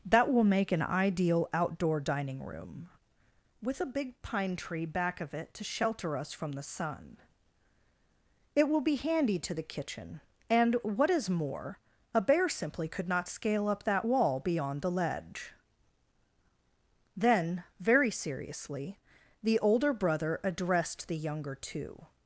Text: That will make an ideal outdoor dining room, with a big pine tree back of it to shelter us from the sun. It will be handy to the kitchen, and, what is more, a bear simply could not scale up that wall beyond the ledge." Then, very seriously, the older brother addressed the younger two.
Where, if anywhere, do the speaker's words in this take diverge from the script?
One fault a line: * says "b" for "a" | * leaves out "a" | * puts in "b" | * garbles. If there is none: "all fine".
all fine